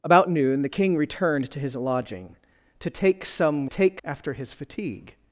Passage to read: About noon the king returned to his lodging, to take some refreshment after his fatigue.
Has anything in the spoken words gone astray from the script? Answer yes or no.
yes